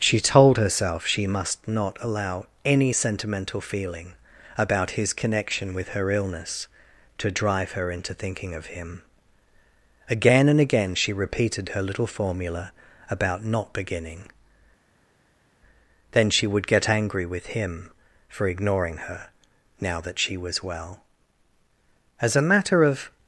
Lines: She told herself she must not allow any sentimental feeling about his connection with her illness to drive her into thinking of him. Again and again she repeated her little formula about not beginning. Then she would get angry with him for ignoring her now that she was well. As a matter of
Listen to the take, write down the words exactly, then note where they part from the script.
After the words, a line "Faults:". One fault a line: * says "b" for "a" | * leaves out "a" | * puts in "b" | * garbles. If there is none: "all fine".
She told herself she must not allow any sentimental feeling about his connection with her illness to drive her into thinking of him. Again and again she repeated her little formula about not beginning. Then she would get angry with him for ignoring her now that she was well. As a matter of
Faults:
all fine